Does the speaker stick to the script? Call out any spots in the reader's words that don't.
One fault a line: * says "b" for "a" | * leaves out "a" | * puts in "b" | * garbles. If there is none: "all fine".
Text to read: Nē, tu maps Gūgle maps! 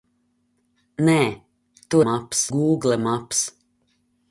all fine